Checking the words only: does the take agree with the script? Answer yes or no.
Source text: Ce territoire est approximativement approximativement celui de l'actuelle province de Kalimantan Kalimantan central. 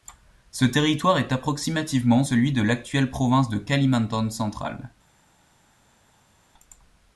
no